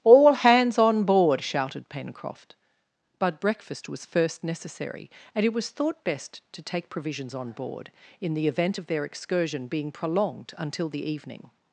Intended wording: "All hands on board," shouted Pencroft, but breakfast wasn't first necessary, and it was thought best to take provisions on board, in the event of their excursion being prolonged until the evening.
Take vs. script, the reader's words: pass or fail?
fail